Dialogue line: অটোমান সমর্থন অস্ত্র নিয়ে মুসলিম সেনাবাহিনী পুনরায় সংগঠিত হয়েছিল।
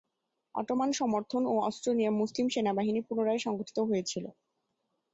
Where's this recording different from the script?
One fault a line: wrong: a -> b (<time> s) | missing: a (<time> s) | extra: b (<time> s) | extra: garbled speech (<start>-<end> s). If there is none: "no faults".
extra: ও (1.4 s)